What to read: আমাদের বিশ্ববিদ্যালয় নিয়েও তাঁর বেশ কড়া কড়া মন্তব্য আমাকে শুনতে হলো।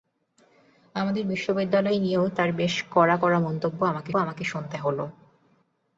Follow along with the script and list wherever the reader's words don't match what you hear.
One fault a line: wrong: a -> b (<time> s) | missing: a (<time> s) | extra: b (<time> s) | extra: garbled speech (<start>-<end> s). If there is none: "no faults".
extra: আমাকে (4.2 s)